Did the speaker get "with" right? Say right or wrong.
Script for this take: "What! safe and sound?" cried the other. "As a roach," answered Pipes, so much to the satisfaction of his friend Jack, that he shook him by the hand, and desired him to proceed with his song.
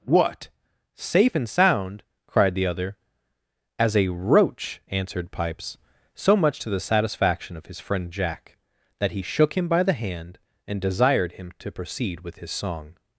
right